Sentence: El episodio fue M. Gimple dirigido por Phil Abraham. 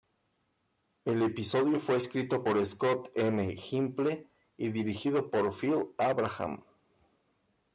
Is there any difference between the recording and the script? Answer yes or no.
yes